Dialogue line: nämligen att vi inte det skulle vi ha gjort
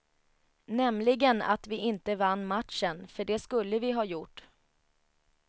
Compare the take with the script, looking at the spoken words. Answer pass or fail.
fail